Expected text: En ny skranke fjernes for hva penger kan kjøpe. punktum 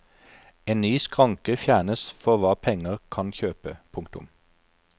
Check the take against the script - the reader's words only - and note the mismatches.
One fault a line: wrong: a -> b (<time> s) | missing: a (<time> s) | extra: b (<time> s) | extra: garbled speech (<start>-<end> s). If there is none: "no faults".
no faults